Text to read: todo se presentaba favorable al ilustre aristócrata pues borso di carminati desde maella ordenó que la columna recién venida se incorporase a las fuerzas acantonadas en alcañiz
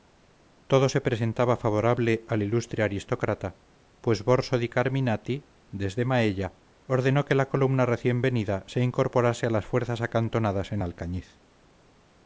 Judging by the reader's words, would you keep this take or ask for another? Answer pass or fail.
pass